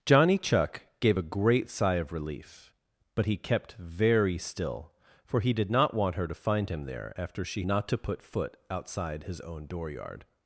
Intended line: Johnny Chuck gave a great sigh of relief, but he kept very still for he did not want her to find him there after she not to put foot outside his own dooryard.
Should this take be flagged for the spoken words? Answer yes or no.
no